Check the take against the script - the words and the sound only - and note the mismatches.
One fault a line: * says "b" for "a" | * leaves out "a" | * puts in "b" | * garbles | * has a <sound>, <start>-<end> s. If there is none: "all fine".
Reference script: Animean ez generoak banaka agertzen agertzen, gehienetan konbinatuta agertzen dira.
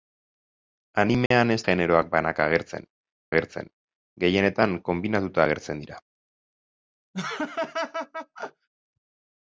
* has a dropout, 1.3-1.3 s
* has a laugh, 7.1-8.7 s